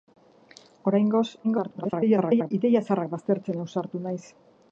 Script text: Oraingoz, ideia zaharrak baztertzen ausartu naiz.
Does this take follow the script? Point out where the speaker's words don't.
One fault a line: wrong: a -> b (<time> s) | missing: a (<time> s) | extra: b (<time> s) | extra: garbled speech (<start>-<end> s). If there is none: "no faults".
extra: garbled speech (1.4-2.5 s)